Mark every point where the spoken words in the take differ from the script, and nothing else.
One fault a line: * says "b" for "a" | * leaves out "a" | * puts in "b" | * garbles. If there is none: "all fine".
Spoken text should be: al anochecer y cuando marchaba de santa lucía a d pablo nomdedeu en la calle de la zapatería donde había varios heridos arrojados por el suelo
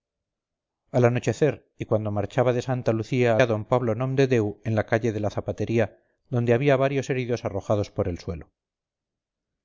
all fine